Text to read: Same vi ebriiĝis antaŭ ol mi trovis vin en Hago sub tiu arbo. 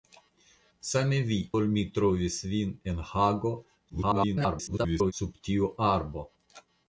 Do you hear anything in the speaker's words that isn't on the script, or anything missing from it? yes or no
yes